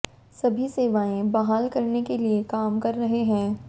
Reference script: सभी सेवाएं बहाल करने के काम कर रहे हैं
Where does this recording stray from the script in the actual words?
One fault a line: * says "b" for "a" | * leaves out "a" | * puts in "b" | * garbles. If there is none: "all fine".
* puts in "लिए"